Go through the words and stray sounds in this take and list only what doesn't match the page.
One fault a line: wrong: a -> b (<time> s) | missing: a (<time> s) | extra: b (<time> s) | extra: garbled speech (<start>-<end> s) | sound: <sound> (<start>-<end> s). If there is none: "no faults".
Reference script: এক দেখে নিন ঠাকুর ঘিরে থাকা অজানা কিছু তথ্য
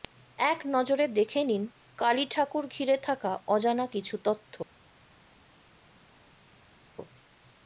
extra: নজরে (0.7 s)
extra: কালী (2.0 s)